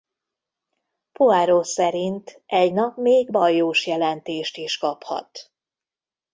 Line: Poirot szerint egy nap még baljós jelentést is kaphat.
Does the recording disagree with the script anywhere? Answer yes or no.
no